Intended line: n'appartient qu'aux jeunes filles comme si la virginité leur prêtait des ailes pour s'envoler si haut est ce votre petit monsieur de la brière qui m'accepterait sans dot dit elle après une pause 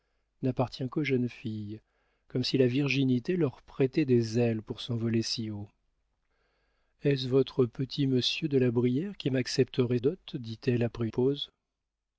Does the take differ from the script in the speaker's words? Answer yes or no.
yes